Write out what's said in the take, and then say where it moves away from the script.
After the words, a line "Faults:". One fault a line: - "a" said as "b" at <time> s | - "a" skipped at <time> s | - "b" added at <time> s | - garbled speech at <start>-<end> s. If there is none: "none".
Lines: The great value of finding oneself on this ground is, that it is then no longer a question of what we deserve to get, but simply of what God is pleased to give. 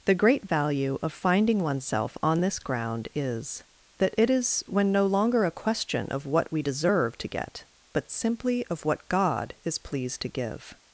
The great value of finding oneself on this ground is, that it is when no longer a question of what we deserve to get, but simply of what God is pleased to give.
Faults:
- "then" said as "when" at 4.7 s